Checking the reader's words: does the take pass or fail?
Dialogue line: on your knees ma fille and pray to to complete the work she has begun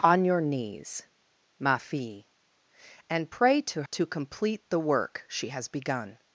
pass